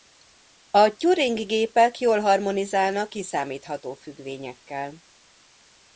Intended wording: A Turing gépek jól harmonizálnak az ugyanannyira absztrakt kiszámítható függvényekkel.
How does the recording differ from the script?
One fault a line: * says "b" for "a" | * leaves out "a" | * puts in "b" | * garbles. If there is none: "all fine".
* leaves out "az ugyanannyira absztrakt"